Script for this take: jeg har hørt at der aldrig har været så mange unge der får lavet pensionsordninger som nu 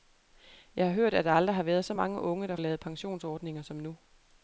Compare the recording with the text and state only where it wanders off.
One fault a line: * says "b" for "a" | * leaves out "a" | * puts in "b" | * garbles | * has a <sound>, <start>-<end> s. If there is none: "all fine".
* leaves out "får"